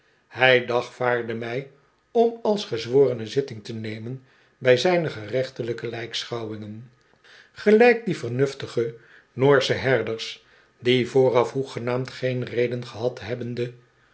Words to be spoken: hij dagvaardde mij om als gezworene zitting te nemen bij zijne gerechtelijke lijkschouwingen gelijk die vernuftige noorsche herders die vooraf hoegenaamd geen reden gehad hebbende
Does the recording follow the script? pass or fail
pass